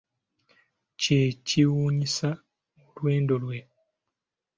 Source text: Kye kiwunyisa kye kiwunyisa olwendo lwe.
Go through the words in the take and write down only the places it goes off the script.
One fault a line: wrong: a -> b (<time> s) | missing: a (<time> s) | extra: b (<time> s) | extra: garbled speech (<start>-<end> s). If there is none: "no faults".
missing: kye kiwunyisa (2.3 s)